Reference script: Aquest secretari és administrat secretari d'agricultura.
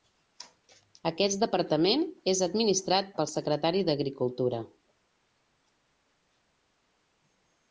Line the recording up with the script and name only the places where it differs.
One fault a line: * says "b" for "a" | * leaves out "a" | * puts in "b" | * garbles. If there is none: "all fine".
* says "departament" for "secretari"
* puts in "pel"